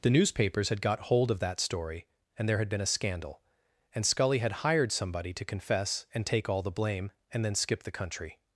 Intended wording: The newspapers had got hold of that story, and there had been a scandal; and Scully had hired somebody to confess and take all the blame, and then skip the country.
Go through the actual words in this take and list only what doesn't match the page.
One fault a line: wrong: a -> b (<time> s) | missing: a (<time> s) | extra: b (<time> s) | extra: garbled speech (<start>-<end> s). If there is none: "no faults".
no faults